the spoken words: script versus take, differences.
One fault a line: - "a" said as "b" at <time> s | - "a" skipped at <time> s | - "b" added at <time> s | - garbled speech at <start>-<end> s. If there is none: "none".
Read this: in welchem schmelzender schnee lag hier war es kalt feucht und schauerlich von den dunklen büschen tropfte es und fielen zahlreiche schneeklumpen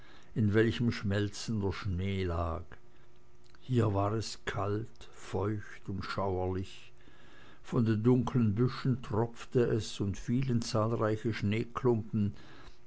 none